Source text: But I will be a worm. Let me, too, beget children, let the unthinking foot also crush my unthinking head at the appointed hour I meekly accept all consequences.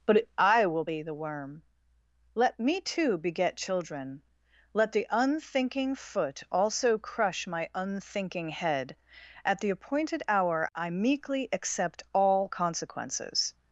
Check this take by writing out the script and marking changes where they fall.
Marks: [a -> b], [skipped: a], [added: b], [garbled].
But I will be [a -> the] worm. Let me, too, beget children, let the unthinking foot also crush my unthinking head at the appointed hour I meekly accept all consequences.